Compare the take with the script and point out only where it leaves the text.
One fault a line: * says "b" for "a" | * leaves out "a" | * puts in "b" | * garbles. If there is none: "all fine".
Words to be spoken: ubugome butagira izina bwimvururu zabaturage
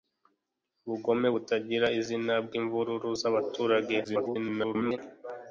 * garbles